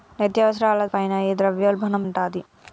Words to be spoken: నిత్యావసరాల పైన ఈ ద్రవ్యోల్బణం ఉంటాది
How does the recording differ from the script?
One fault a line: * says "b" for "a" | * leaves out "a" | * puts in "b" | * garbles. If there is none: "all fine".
all fine